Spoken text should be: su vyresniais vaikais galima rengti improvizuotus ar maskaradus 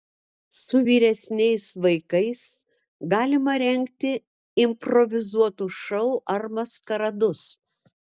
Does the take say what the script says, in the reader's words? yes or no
no